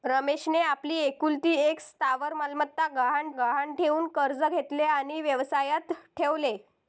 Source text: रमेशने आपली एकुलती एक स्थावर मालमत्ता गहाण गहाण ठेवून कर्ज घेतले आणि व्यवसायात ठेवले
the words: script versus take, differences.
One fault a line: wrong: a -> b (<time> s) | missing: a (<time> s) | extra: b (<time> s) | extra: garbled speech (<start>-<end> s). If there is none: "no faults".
no faults